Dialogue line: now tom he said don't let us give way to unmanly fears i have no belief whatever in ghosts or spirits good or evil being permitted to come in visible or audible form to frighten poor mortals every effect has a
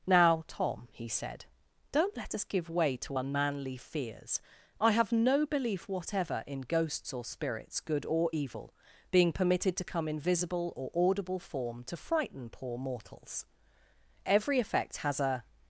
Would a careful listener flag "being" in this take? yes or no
no